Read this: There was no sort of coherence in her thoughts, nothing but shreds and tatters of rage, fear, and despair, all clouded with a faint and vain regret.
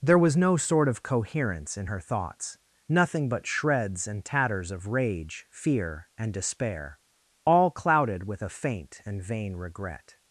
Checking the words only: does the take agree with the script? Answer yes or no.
yes